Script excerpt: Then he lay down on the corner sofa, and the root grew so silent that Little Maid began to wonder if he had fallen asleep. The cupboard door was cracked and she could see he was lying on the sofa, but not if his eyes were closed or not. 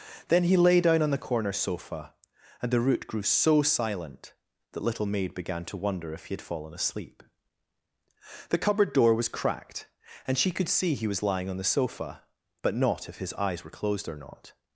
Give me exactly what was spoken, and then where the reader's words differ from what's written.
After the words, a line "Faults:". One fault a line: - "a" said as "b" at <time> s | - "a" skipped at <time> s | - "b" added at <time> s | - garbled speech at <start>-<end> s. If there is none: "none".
Then he lay down on the corner sofa, and the root grew so silent that Little Maid began to wonder if he had fallen asleep. The cupboard door was cracked and she could see he was lying on the sofa, but not if his eyes were closed or not.
Faults:
none